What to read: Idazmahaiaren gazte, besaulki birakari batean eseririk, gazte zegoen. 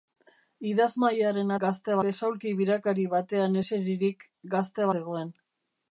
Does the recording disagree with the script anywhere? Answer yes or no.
no